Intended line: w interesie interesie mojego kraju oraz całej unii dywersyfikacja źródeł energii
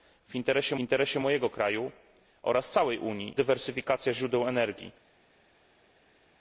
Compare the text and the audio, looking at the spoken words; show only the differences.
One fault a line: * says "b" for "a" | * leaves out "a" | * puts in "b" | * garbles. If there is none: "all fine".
all fine